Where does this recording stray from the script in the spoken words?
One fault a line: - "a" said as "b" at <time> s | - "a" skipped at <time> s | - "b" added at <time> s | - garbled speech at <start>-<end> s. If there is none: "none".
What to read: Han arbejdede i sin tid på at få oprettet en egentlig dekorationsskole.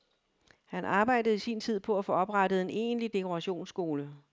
none